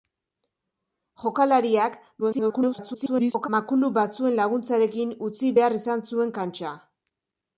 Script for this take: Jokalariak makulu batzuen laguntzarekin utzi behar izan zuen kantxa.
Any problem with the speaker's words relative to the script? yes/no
yes